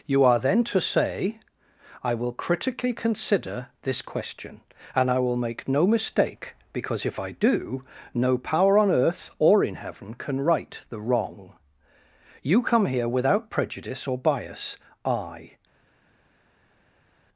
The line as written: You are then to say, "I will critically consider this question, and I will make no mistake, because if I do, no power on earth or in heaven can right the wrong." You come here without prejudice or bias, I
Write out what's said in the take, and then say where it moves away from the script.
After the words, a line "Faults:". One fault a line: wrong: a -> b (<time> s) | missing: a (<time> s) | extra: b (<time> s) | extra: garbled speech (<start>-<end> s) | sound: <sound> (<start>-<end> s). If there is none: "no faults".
You are then to say, "I will critically consider this question, and I will make no mistake, because if I do, no power on earth or in heaven can right the wrong." You come here without prejudice or bias, I
Faults:
no faults